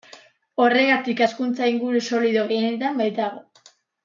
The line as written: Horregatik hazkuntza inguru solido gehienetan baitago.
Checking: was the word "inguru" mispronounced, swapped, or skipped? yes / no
no